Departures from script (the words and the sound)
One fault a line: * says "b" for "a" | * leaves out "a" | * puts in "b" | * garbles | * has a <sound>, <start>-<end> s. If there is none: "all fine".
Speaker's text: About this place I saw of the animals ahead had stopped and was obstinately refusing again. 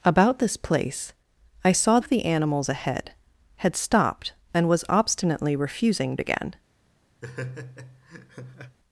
* has a laugh, 7.2-8.8 s